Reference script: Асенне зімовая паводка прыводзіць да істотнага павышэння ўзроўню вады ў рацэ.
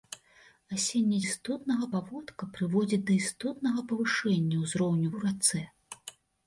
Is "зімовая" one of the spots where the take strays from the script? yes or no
yes